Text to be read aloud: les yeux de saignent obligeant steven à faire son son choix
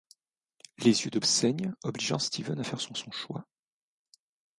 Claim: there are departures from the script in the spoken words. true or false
false